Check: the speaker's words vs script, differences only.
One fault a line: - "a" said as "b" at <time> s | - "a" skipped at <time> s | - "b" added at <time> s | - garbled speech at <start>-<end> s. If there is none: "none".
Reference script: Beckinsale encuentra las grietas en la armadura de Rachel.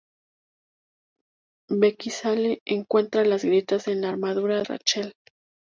- "de" skipped at 4.6 s